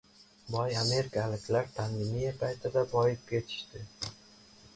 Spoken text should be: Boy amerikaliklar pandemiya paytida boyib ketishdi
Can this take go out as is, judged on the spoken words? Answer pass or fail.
pass